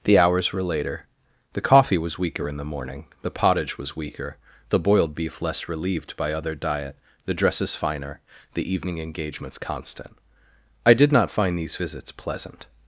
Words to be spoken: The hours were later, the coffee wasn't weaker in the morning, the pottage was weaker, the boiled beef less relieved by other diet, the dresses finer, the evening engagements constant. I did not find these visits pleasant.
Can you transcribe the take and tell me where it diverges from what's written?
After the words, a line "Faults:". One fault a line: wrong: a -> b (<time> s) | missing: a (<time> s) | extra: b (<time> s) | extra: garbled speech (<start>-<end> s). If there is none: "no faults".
The hours were later, the coffee was weaker in the morning, the pottage was weaker, the boiled beef less relieved by other diet, the dresses finer, the evening engagements constant. I did not find these visits pleasant.
Faults:
wrong: wasn't -> was (2.0 s)